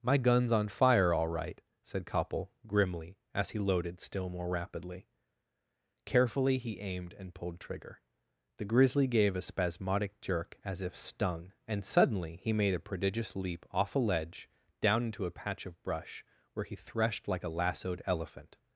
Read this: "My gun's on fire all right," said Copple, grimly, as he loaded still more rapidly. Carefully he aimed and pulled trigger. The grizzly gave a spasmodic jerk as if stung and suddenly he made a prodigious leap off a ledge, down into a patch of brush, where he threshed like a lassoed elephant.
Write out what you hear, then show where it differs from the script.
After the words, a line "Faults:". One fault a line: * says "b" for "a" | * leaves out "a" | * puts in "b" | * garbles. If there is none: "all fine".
"My gun's on fire all right," said Copple, grimly, as he loaded still more rapidly. Carefully he aimed and pulled trigger. The grizzly gave a spasmodic jerk as if stung and suddenly he made a prodigious leap off a ledge, down into a patch of brush, where he threshed like a lassoed elephant.
Faults:
all fine